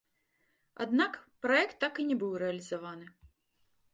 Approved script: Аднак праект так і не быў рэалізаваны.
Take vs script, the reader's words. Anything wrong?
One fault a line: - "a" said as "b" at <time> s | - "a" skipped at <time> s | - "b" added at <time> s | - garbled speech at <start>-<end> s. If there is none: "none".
none